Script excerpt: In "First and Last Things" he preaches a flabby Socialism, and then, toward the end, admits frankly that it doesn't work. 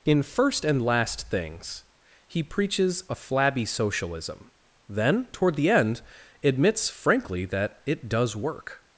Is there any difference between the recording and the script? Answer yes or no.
yes